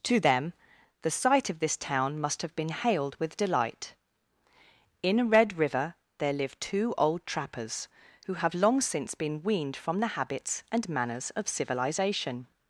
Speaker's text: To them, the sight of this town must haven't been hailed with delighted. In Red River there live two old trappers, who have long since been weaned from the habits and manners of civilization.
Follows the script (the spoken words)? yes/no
no